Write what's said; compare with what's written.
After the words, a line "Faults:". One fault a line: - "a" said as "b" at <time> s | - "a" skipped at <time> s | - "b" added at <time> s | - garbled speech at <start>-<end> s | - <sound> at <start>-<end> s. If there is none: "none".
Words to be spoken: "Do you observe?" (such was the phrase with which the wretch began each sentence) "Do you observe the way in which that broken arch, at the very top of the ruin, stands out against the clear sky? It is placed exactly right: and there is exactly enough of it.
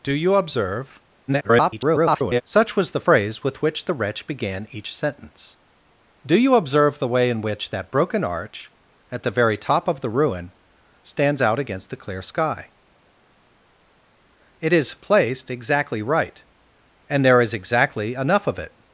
"Do you observe?" [garbled] (such was the phrase with which the wretch began each sentence) "Do you observe the way in which that broken arch, at the very top of the ruin, stands out against the clear sky? It is placed exactly right: and there is exactly enough of it.
Faults:
- garbled speech at 1.3-2.4 s